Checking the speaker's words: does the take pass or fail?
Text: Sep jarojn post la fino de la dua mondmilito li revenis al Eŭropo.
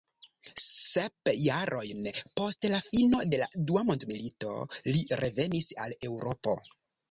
pass